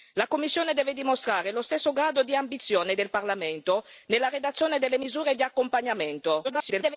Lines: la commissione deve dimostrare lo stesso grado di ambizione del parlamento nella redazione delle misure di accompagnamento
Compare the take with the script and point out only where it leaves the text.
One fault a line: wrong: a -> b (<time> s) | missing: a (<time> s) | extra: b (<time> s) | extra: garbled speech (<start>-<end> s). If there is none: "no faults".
extra: garbled speech (6.4-7.0 s)